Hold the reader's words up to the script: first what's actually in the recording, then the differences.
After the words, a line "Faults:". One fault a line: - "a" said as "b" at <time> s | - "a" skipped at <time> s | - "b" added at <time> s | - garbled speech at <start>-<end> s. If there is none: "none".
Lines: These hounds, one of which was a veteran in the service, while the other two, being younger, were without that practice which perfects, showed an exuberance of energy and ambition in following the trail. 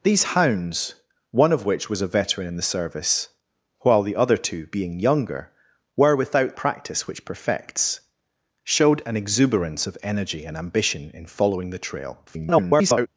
These hounds, one of which was a veteran in the service, while the other two, being younger, were without practice which perfects, showed an exuberance of energy and ambition in following the trail. [garbled]
Faults:
- "that" skipped at 6.5 s
- garbled speech at 12.3-13.1 s